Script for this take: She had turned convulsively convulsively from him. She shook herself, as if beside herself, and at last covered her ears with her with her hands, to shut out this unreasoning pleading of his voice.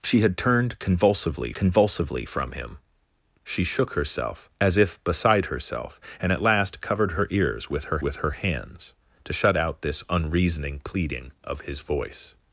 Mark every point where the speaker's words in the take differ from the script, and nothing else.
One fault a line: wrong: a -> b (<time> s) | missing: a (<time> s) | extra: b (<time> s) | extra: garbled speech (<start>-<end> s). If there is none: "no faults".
no faults